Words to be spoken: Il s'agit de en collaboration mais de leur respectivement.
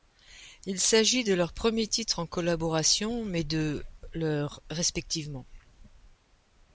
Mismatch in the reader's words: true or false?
true